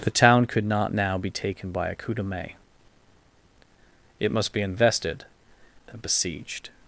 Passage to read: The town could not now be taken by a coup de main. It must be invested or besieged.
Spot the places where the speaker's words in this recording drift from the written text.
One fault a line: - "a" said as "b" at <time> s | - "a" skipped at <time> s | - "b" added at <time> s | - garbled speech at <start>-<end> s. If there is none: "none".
- "or" said as "and" at 5.9 s